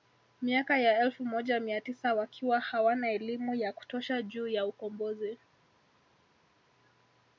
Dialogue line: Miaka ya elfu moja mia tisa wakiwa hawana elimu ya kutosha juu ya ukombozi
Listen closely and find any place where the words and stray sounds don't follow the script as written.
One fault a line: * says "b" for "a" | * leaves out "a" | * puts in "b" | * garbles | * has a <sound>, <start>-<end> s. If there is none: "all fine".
all fine